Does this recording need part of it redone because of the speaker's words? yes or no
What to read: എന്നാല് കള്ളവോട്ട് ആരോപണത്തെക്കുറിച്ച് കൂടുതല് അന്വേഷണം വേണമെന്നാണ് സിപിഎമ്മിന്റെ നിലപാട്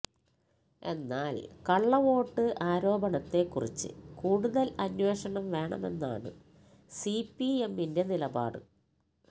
no